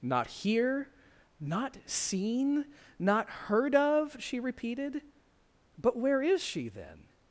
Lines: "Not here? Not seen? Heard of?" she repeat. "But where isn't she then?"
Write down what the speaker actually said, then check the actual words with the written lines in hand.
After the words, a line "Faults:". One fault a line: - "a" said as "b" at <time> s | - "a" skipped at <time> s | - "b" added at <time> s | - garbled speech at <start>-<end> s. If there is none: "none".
"Not here? Not seen? Not heard of?" she repeated. "But where is she then?"
Faults:
- "Not" added at 3.0 s
- "repeat" said as "repeated" at 4.4 s
- "isn't" said as "is" at 6.2 s